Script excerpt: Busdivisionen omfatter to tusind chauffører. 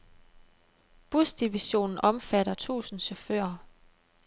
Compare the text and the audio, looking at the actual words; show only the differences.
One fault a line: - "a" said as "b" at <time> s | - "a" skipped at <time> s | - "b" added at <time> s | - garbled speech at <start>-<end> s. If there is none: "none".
- "to" skipped at 2.5 s